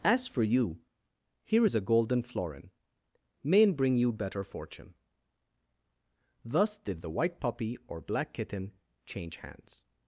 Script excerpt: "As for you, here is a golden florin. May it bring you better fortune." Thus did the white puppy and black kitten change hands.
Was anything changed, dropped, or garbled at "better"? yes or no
no